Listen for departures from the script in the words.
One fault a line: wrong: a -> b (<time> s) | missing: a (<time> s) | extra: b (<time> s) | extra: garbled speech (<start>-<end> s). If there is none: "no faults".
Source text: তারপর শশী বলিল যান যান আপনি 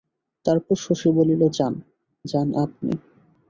no faults